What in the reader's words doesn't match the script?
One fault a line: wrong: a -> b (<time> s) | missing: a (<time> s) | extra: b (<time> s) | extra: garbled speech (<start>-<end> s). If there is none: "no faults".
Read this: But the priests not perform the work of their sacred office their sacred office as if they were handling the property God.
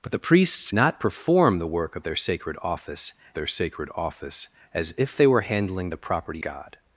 no faults